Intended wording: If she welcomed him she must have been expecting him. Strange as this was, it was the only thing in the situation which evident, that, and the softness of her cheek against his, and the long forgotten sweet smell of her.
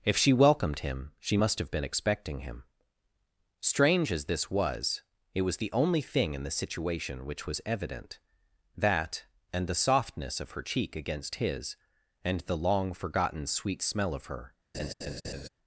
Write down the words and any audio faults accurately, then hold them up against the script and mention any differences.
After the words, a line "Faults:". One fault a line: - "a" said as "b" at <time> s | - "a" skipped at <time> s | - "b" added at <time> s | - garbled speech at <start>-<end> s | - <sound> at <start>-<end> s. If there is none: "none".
If she welcomed him she must have been expecting him. Strange as this was, it was the only thing in the situation which was evident, that, and the softness of her cheek against his, and the long forgotten sweet smell of her.
Faults:
- "was" added at 7.5 s
- laugh at 14.7-15.5 s